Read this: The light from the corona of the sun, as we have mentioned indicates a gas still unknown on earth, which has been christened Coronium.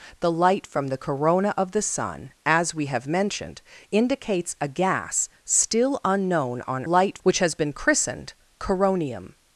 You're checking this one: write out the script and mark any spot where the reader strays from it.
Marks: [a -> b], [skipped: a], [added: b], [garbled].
The light from the corona of the sun, as we have mentioned indicates a gas still unknown on [earth, -> light] which has been christened Coronium.